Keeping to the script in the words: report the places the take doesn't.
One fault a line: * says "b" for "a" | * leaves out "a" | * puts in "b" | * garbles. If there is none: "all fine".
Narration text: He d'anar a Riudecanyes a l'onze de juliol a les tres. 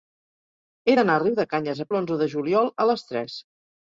all fine